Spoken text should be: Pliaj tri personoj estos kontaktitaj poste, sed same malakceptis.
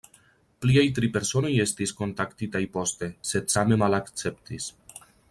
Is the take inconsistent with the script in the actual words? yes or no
yes